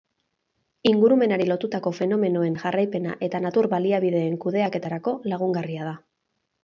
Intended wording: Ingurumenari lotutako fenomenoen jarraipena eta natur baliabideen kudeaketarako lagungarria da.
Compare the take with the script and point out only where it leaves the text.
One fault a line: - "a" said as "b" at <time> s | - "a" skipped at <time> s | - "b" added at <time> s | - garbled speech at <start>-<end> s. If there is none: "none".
none